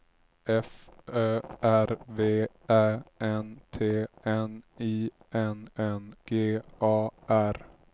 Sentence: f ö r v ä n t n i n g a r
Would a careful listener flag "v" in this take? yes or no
no